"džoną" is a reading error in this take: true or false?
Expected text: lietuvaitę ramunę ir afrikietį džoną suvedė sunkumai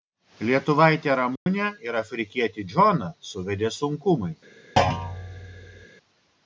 false